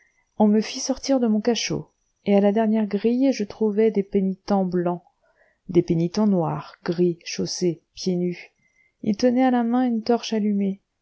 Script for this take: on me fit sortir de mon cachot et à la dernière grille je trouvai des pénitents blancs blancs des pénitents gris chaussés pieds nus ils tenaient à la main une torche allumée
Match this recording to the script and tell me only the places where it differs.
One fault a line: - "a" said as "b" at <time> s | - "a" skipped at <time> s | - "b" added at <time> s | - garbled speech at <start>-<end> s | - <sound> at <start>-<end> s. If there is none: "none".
- "blancs" skipped at 5.0 s
- "noirs" added at 6.3 s